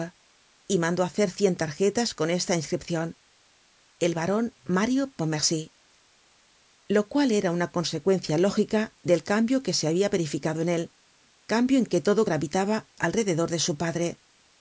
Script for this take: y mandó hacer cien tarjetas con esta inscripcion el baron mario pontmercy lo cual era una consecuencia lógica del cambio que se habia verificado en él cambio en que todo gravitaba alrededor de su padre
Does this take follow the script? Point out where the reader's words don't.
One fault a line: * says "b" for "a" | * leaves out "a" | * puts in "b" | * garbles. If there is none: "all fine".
all fine